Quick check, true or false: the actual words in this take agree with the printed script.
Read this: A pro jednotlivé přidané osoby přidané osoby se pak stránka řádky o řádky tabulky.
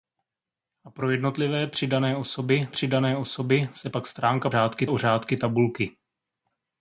true